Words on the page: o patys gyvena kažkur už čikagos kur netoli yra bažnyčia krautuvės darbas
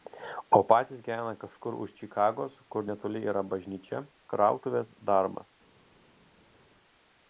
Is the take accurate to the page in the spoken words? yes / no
yes